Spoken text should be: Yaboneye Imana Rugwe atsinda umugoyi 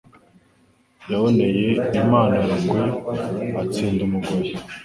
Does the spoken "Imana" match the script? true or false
true